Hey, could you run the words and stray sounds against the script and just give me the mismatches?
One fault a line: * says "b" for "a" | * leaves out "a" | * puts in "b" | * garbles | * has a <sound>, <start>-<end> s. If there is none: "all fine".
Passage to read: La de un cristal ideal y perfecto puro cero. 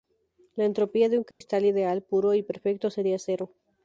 * puts in "entropía"
* has a dropout, 1.3-1.4 s
* puts in "puro"
* says "sería" for "puro"